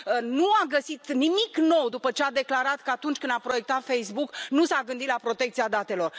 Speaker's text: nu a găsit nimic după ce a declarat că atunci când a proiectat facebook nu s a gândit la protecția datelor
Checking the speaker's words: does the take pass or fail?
fail